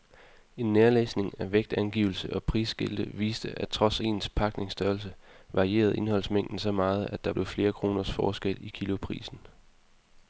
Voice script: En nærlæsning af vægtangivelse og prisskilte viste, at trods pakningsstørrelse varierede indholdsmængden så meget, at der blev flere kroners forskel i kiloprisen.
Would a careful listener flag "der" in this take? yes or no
no